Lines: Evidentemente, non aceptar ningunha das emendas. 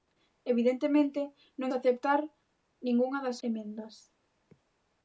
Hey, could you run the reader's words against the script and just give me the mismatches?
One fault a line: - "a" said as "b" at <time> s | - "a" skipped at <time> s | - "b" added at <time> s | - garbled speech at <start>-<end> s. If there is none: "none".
none